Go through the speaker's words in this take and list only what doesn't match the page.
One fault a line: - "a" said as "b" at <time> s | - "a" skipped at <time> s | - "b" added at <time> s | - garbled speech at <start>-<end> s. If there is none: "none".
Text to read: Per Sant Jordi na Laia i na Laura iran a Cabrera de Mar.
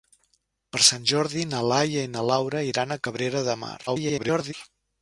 - garbled speech at 3.9-4.5 s